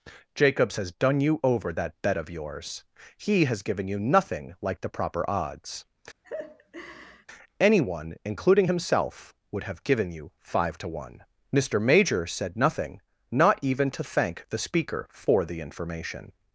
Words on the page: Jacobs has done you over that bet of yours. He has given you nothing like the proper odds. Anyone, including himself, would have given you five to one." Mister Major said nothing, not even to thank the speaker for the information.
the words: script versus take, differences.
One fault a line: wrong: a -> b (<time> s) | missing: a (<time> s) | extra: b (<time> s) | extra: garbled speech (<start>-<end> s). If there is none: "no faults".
no faults